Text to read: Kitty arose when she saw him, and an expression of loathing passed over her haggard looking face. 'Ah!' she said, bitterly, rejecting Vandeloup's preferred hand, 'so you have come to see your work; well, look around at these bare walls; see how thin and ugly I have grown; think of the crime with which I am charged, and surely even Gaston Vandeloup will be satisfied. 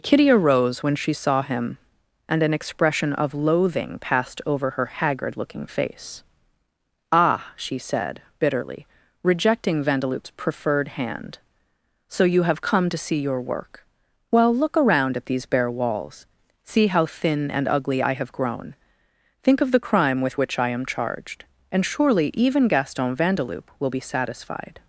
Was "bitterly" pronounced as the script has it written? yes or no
yes